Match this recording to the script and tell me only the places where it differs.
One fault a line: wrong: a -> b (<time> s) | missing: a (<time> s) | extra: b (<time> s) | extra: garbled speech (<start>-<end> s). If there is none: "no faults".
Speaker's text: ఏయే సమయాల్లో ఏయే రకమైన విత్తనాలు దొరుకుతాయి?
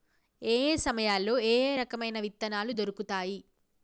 no faults